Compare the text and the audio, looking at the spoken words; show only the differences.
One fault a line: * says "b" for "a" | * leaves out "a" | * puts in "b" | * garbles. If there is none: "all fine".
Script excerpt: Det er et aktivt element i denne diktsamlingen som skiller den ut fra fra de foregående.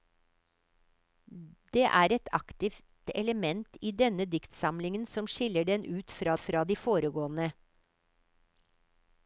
all fine